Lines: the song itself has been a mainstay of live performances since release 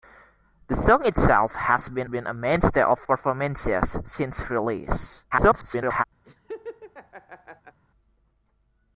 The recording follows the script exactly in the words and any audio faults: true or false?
false